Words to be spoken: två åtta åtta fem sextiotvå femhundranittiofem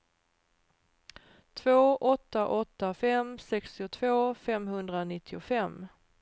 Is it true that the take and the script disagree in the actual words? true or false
false